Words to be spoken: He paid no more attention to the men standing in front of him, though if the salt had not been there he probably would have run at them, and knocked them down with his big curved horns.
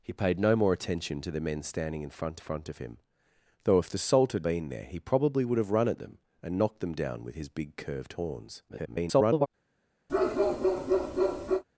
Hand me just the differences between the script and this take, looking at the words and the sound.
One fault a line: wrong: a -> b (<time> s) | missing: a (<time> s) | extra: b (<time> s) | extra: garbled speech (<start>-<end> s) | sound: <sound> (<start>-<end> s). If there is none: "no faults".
extra: front (2.4 s)
missing: not (4.4 s)
extra: garbled speech (8.7-9.5 s)
sound: bark (10.1-11.6 s)